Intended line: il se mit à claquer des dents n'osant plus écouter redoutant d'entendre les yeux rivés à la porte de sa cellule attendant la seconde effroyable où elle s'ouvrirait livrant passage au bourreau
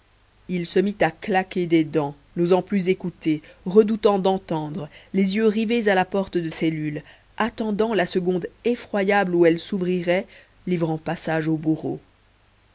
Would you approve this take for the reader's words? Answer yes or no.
no